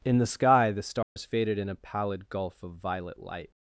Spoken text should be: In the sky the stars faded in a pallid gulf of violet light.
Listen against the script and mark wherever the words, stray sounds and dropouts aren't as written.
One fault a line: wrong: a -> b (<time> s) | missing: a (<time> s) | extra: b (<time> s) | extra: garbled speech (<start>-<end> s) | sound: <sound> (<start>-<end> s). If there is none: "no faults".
sound: dropout (1.0-1.2 s)